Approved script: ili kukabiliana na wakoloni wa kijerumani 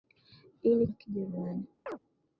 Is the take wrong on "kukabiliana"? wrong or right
wrong